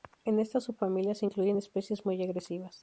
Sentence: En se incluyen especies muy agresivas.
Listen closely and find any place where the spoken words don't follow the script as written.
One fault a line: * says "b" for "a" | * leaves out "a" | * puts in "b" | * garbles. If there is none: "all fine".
* puts in "esta subfamilia"